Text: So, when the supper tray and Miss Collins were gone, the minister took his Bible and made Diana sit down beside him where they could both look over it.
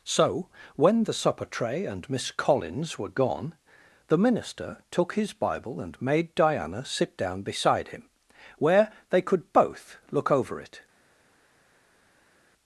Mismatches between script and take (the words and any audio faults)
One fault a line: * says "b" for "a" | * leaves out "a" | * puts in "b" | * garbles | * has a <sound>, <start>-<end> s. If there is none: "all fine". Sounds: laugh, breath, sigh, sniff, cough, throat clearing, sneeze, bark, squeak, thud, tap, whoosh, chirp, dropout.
all fine